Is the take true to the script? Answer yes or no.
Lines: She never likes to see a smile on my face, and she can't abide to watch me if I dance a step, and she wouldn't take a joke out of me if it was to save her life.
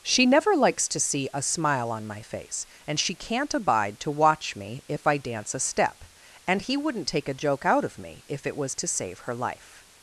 no